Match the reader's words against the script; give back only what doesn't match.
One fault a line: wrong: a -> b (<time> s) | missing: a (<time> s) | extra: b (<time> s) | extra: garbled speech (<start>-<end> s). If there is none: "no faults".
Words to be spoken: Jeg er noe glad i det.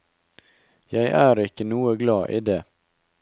extra: ikke (1.4 s)